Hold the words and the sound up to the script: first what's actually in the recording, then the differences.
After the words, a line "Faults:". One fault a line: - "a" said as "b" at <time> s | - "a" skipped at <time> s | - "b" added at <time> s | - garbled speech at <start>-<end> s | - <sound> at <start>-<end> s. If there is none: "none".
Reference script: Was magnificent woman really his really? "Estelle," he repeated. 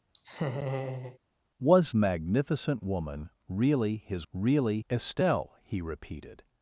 Was magnificent woman really his really? "Estelle," he repeated.
Faults:
- laugh at 0.1-1.2 s